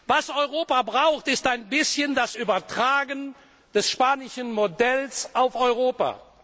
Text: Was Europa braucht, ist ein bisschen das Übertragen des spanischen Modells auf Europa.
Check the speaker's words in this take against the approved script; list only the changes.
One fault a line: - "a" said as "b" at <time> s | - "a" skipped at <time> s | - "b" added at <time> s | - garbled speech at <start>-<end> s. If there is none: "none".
none